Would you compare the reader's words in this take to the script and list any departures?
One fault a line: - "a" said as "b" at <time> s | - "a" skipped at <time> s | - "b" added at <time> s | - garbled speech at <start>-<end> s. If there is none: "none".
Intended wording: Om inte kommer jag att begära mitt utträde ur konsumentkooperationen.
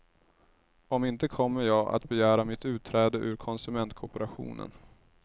none